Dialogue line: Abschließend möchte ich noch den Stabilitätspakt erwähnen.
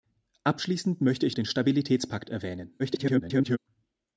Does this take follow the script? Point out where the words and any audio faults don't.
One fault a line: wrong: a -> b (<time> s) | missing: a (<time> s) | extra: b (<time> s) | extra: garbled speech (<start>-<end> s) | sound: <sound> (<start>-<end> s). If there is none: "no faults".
missing: noch (1.4 s)
extra: garbled speech (2.8-3.6 s)